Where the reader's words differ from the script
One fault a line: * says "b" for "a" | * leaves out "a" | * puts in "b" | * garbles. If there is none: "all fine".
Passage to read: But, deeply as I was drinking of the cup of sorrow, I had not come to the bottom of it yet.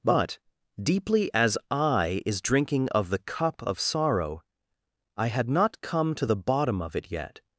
* says "is" for "was"